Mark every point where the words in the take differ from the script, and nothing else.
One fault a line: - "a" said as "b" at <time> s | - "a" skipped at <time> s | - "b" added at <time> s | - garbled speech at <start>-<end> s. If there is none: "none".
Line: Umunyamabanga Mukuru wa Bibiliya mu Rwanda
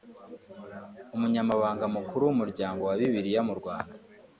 - "w'Umuryango" added at 2.3 s